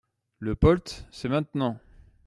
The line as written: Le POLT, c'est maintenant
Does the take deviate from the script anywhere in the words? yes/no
no